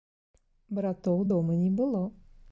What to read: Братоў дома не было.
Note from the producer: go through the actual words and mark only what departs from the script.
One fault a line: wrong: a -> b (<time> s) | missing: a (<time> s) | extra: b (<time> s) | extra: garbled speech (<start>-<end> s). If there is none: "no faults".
no faults